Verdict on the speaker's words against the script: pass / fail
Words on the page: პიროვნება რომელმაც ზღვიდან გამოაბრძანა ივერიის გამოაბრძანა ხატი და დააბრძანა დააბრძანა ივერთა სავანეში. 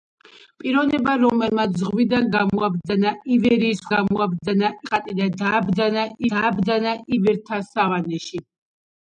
pass